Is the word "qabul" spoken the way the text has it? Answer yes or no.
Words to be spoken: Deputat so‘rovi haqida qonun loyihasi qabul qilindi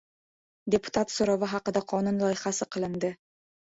no